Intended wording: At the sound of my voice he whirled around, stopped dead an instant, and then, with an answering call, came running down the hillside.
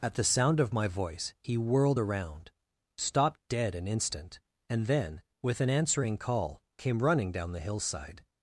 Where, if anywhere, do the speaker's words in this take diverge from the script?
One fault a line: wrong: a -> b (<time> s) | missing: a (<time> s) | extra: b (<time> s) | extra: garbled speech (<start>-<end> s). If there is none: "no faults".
no faults